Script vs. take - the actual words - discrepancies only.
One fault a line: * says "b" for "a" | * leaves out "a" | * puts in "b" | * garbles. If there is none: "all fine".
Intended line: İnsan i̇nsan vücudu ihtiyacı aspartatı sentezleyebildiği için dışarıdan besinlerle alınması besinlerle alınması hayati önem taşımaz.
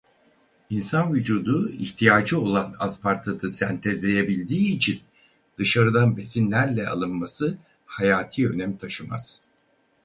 * leaves out "i̇nsan"
* puts in "olan"
* leaves out "besinlerle alınması"